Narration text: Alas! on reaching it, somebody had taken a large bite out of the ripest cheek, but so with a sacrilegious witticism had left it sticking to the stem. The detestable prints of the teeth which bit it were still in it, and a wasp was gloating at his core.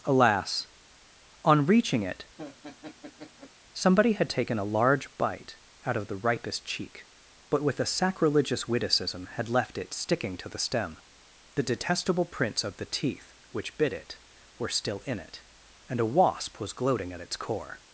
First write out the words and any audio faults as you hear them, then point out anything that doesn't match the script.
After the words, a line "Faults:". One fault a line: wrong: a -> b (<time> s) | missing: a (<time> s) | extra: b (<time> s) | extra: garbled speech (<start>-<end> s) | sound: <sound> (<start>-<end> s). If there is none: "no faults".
Alas! on reaching it, somebody had taken a large bite out of the ripest cheek, but with a sacrilegious witticism had left it sticking to the stem. The detestable prints of the teeth which bit it were still in it, and a wasp was gloating at its core.
Faults:
sound: laugh (2.4-3.5 s)
missing: so (7.6 s)
wrong: his -> its (17.2 s)